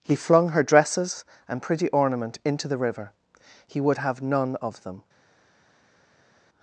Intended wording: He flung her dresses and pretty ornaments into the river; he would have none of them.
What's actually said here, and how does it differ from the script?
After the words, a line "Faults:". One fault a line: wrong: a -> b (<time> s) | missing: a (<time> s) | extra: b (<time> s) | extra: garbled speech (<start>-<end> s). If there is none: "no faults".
He flung her dresses and pretty ornament into the river; he would have none of them.
Faults:
wrong: ornaments -> ornament (1.9 s)